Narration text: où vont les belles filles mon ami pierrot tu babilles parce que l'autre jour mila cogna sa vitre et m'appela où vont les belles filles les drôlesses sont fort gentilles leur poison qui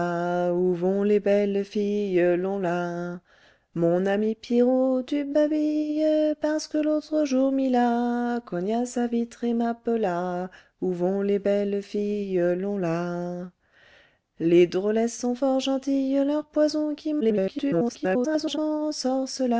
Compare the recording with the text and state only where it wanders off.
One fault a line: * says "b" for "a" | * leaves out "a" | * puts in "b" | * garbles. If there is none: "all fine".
* garbles